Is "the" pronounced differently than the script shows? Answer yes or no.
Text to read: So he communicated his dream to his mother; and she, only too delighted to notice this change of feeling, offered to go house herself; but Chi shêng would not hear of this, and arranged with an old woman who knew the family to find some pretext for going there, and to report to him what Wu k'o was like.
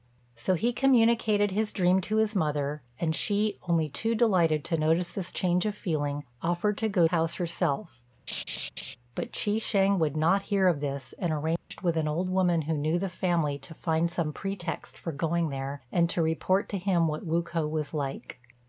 no